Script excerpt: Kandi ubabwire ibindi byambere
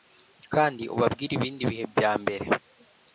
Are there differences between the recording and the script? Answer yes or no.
yes